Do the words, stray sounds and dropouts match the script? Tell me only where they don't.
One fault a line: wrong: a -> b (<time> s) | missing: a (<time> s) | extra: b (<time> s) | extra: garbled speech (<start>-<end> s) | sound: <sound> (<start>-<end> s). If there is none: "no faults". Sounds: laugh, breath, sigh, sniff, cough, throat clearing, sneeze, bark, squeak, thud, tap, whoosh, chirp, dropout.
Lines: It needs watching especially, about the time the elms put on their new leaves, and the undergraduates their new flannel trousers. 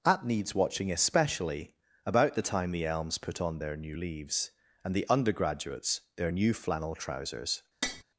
wrong: It -> At (0.0 s)
sound: tap (7.8-8.0 s)